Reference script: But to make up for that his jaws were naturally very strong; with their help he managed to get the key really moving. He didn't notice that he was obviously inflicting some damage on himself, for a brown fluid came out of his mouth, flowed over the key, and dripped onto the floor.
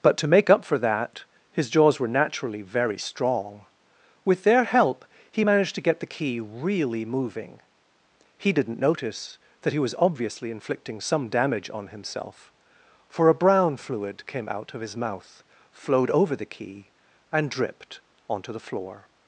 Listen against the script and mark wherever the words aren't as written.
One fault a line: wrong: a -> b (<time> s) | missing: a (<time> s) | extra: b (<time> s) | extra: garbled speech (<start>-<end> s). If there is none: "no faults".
no faults